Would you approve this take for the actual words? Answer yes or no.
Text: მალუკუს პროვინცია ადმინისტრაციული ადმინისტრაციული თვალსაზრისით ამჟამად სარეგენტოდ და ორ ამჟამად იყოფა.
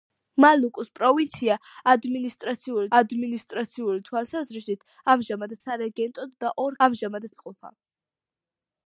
yes